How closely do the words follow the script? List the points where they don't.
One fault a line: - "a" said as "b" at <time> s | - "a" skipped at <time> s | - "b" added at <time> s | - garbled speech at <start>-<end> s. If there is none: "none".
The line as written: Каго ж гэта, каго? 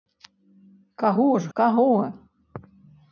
- "гэта" skipped at 1.5 s